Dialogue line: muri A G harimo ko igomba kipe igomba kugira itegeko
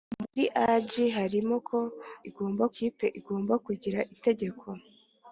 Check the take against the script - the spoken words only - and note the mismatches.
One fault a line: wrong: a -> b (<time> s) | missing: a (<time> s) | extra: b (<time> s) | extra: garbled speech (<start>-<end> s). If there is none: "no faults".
no faults